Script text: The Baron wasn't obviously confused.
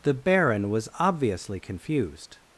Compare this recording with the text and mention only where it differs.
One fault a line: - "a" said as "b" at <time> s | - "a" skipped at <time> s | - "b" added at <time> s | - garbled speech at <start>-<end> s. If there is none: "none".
- "wasn't" said as "was" at 0.7 s